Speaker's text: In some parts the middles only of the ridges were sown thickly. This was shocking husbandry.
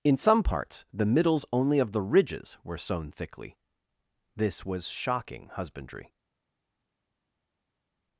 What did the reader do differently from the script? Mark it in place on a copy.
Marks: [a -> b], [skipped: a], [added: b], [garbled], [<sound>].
In some parts the middles only of the ridges were sown thickly. This was shocking husbandry.